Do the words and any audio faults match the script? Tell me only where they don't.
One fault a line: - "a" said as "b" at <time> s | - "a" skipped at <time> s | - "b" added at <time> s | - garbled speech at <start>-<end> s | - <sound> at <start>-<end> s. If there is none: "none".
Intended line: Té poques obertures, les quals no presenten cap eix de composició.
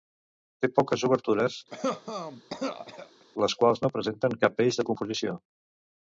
- cough at 1.7-3.2 s